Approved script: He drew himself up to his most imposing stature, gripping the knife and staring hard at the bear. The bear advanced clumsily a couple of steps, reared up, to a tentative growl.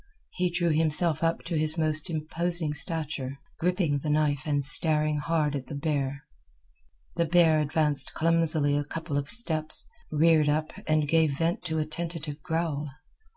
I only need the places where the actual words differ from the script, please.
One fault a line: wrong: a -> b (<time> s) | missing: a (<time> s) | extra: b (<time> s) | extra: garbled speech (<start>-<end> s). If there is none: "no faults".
extra: and gave vent (10.9 s)